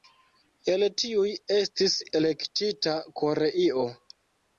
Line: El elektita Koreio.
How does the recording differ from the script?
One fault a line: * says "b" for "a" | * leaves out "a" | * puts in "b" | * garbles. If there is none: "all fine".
* puts in "tiuj estis"